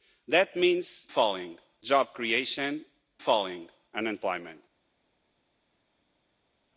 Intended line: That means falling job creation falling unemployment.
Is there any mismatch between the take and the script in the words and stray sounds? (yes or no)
no